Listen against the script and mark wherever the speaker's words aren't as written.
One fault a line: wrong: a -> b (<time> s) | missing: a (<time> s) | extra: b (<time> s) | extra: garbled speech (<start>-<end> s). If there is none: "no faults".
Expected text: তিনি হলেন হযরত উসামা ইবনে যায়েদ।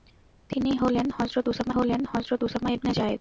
extra: হলেন হযরত উসামা (1.7 s)